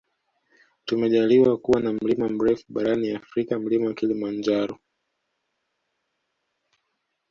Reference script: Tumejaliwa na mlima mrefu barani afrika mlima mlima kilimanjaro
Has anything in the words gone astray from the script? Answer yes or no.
yes